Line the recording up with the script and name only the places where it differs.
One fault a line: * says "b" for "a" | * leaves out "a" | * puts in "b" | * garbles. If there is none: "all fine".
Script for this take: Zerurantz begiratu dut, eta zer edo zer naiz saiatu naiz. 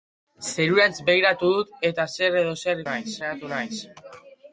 all fine